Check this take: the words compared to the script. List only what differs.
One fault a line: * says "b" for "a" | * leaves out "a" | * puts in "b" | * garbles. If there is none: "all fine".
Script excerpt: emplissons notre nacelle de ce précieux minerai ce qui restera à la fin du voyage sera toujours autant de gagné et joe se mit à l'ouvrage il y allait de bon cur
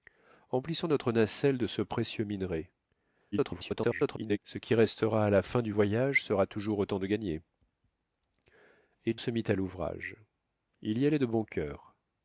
* garbles
* leaves out "joe"